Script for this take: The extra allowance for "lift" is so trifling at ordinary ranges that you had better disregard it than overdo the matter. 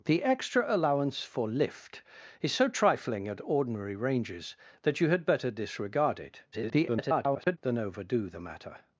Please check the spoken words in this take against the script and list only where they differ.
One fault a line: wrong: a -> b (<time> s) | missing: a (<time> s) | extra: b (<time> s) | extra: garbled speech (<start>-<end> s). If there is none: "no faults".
extra: garbled speech (6.5-7.6 s)